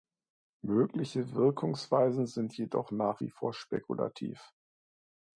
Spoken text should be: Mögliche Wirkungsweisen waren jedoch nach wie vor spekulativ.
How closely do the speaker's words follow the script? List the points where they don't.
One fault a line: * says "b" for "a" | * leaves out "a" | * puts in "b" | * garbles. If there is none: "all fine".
* says "sind" for "waren"